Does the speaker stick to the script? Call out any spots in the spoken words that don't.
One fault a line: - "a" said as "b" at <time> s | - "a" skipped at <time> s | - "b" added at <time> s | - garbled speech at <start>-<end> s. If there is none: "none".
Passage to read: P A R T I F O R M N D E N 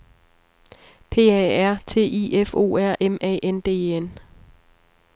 - "A" added at 3.2 s